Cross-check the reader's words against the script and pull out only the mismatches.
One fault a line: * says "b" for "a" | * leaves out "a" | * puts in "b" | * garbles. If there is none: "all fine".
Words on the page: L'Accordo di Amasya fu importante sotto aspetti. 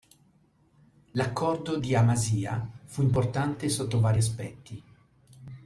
* puts in "vari"